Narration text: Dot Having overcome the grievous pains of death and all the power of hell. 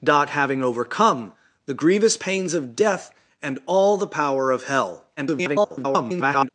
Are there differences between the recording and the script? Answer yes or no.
yes